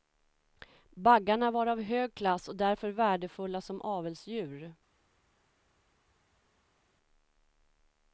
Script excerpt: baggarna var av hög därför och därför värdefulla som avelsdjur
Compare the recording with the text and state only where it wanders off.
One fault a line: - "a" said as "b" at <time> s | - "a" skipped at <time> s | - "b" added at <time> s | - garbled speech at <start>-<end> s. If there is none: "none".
- "därför" said as "klass" at 2.1 s